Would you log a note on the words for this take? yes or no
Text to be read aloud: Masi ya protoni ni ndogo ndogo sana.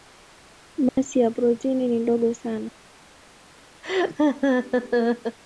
yes